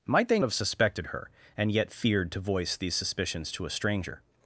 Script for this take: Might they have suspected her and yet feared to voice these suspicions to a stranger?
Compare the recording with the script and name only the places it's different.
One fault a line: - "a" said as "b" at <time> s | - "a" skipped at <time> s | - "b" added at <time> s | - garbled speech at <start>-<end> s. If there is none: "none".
none